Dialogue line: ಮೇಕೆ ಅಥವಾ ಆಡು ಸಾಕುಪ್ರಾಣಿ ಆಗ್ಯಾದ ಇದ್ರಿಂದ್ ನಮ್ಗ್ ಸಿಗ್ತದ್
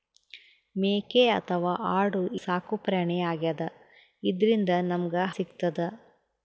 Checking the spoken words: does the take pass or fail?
pass